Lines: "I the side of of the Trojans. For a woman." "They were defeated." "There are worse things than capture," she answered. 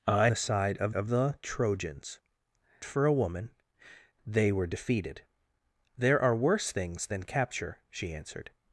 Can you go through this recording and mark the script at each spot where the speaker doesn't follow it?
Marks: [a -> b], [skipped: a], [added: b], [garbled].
"I the side of of the Trojans. For a woman." "They were defeated." "There are worse things than capture," she answered.